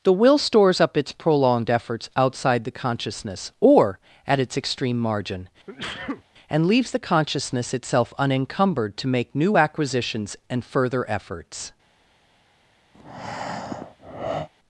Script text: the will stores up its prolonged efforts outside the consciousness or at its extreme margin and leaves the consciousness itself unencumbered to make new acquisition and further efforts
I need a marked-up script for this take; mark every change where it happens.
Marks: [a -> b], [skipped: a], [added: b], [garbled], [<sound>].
the will stores up its prolonged efforts outside the consciousness or at its extreme margin [sneeze] and leaves the consciousness itself unencumbered to make new [acquisition -> acquisitions] and further efforts [breath]